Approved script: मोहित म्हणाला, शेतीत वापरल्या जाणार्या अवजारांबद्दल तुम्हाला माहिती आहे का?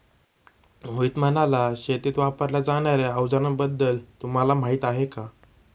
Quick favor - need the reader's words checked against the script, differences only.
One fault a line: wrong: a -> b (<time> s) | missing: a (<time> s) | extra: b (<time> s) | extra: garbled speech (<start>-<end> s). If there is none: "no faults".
no faults